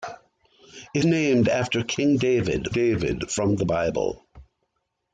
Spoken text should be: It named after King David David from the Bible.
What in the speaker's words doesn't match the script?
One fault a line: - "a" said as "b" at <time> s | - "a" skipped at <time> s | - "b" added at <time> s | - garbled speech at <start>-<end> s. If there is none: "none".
none